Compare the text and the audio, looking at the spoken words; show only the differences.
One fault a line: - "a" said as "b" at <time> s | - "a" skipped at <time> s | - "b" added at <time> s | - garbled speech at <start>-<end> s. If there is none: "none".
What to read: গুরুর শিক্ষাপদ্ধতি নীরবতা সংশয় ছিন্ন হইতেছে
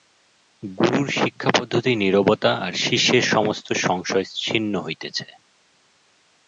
- "আর শিষ্যের সমস্ত" added at 2.6 s